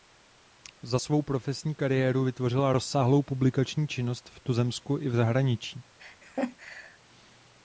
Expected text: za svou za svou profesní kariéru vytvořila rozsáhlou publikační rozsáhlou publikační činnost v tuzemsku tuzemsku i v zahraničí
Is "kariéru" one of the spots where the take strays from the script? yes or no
no